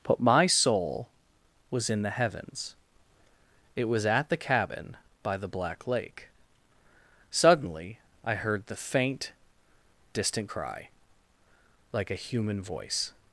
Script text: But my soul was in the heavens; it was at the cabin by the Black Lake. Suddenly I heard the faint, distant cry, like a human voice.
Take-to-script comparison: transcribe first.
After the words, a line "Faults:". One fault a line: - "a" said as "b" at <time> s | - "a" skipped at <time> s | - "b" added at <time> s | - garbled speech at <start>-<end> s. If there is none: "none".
But my soul was in the heavens; it was at the cabin by the Black Lake. Suddenly I heard the faint, distant cry, like a human voice.
Faults:
none